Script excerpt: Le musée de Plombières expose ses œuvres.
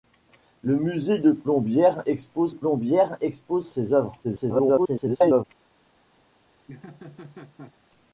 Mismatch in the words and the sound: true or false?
true